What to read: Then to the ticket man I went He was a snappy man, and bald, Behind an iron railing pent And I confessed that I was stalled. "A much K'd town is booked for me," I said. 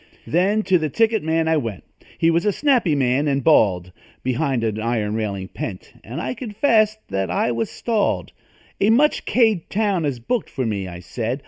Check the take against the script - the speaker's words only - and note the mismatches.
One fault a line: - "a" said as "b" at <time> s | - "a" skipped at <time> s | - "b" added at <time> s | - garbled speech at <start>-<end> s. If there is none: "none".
none